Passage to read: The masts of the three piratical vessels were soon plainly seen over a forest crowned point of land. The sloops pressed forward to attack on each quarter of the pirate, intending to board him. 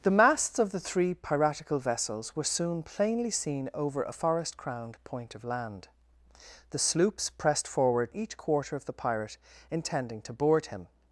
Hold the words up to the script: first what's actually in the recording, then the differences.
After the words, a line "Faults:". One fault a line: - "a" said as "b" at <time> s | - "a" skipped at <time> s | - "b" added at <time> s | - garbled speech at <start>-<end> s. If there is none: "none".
The masts of the three piratical vessels were soon plainly seen over a forest crowned point of land. The sloops pressed forward each quarter of the pirate, intending to board him.
Faults:
- "to attack on" skipped at 8.1 s